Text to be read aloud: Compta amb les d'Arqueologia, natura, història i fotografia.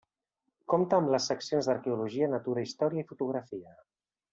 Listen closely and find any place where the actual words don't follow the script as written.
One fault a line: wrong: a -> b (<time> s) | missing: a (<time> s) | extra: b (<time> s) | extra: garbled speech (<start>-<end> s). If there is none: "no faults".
extra: seccions (1.3 s)